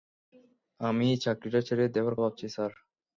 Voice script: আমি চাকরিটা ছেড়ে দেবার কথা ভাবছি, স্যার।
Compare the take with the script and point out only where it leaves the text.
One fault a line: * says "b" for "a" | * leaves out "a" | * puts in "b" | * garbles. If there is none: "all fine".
* leaves out "কথা"